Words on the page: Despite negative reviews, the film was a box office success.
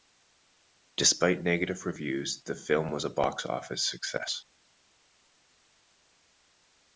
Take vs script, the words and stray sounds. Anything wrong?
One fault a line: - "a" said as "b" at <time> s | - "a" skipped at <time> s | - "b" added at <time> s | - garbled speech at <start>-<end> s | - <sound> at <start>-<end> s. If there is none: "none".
none